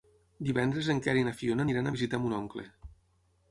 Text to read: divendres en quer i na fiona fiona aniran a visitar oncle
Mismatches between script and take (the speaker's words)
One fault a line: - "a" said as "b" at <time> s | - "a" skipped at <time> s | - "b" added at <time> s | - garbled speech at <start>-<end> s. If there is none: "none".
- "fiona" skipped at 1.7 s
- "mon" added at 2.3 s